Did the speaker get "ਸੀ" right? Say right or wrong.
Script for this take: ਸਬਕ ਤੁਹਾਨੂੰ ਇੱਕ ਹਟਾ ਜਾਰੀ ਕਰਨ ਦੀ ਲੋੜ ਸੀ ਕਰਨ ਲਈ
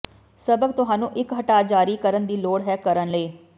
wrong